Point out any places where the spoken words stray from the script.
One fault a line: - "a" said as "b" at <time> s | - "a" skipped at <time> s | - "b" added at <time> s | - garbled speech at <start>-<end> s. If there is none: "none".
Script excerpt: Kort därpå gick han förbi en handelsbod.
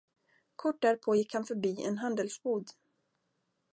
none